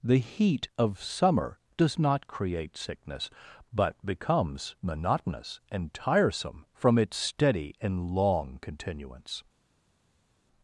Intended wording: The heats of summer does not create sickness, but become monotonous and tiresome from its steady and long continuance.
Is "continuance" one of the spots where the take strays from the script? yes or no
no